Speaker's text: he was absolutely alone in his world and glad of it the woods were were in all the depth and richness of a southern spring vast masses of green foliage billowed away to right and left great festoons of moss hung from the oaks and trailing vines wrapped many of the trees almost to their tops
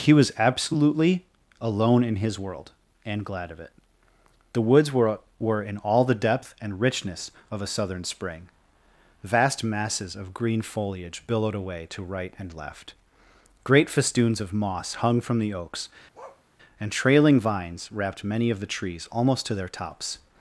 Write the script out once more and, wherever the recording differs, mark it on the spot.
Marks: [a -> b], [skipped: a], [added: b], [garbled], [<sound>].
he was absolutely alone in his world and glad of it the woods were were in all the depth and richness of a southern spring vast masses of green foliage billowed away to right and left great festoons of moss hung from the oaks [bark] and trailing vines wrapped many of the trees almost to their tops